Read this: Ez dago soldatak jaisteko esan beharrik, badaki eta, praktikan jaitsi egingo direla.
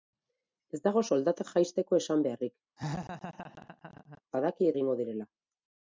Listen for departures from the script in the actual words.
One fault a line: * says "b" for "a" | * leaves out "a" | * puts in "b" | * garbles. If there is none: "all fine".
* leaves out "eta praktikan jaitsi"